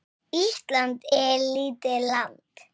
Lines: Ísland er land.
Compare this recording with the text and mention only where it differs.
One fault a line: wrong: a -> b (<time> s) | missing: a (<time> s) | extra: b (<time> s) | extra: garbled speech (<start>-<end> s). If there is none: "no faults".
extra: lítið (1.6 s)